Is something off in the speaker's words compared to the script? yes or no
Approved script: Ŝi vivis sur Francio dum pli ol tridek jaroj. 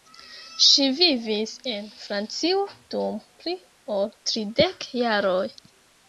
yes